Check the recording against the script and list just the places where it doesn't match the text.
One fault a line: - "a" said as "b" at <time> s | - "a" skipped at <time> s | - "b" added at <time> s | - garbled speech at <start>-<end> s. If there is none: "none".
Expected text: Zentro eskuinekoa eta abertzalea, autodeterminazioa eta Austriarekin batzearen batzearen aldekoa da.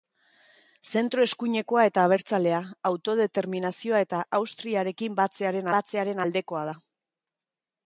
none